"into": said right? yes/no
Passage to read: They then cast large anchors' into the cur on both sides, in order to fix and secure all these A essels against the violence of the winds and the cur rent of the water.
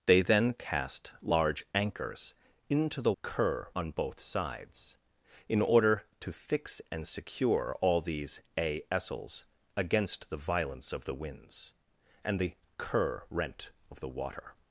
yes